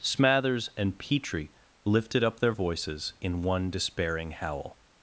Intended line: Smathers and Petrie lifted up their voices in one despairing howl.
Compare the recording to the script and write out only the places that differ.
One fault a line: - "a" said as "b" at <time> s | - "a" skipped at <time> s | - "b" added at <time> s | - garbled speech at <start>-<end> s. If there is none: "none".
none